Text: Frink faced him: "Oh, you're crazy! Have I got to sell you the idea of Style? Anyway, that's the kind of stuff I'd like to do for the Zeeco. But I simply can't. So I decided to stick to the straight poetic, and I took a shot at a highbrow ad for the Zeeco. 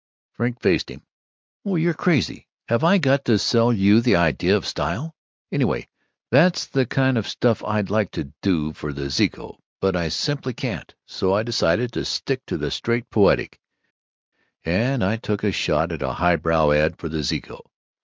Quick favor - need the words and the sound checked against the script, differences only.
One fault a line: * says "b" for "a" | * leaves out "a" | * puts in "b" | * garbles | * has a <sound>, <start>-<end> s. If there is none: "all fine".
all fine